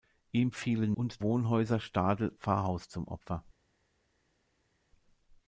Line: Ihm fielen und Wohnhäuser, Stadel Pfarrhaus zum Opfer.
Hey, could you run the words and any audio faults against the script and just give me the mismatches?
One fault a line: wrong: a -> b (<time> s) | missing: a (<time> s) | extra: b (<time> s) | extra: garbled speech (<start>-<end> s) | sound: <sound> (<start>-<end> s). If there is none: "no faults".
no faults